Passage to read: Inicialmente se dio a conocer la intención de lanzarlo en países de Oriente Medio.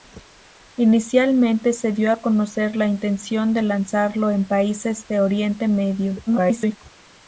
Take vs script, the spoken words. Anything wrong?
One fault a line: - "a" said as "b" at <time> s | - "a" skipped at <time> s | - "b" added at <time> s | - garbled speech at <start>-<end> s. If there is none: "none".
- garbled speech at 6.3-6.8 s